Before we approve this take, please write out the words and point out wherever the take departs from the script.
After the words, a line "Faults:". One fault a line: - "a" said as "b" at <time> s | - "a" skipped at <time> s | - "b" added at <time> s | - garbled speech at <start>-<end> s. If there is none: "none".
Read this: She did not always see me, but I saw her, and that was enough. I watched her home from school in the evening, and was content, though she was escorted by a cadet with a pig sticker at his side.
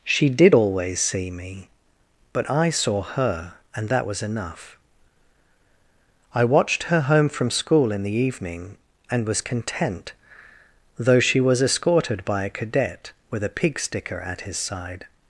She did always see me, but I saw her, and that was enough. I watched her home from school in the evening, and was content, though she was escorted by a cadet with a pig sticker at his side.
Faults:
- "not" skipped at 0.6 s